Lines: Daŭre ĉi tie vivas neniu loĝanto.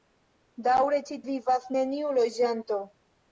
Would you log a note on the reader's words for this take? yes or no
yes